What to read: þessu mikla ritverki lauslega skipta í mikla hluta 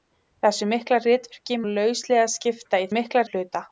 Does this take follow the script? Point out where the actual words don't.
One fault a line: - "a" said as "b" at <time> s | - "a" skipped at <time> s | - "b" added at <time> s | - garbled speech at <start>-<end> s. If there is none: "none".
none